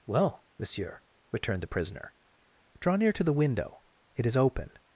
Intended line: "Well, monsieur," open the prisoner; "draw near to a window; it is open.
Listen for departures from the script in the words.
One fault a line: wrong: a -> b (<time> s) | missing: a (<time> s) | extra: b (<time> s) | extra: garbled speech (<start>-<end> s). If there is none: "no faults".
wrong: open -> returned (1.3 s)
wrong: a -> the (3.2 s)